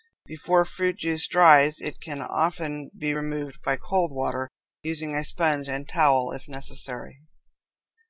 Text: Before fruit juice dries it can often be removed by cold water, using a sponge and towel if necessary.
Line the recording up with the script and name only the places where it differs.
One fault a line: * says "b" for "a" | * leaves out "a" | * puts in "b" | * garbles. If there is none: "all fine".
all fine